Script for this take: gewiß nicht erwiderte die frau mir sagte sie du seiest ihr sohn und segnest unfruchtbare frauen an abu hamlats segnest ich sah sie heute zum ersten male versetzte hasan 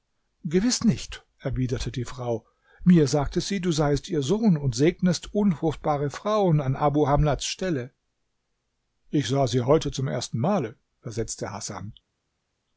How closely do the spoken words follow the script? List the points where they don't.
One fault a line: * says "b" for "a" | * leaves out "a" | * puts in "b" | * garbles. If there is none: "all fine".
* says "stelle" for "segnest"